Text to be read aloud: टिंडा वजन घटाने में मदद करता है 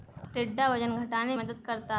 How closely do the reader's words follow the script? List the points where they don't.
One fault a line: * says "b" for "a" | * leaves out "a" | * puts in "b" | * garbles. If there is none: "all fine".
* leaves out "में"